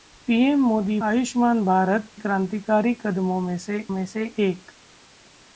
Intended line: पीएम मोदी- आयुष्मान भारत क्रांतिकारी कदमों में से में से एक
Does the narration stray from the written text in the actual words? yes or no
no